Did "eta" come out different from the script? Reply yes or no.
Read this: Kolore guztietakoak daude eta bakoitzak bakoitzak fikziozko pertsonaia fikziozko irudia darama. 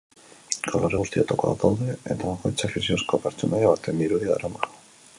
no